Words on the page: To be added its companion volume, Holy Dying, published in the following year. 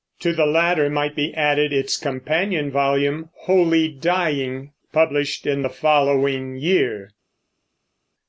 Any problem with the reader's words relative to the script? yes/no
yes